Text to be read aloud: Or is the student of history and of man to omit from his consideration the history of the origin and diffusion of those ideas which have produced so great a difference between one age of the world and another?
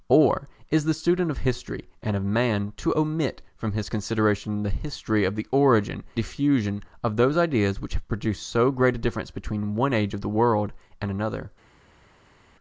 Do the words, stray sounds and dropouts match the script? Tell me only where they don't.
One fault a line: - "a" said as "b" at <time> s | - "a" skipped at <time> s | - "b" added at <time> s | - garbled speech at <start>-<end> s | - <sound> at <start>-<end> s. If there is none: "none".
- "and" skipped at 6.0 s